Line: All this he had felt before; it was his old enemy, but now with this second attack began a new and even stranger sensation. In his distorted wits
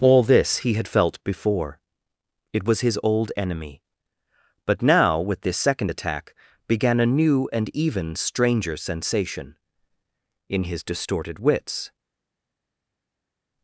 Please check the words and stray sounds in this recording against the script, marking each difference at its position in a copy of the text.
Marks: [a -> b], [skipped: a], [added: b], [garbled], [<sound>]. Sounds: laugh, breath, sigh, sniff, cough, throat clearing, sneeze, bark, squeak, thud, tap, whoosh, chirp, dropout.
All this he had felt before; it was his old enemy, but now with this second attack began a new and even stranger sensation. In his distorted wits